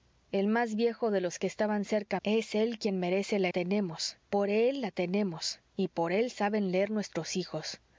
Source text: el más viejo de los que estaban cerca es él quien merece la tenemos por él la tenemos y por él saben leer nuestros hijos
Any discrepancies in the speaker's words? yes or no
no